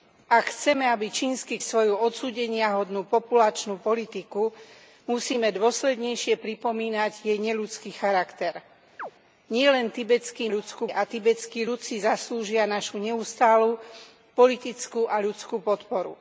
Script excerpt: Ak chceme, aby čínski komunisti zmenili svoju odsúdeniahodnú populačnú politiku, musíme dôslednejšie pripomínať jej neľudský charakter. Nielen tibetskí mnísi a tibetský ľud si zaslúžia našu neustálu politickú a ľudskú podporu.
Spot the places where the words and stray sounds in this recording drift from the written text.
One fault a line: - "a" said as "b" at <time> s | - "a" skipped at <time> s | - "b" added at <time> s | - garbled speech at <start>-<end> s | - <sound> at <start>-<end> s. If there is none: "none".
- "komunisti zmenili" skipped at 1.6 s
- chirp at 9.0-9.1 s
- "mnísi" said as "ľudskú" at 10.5 s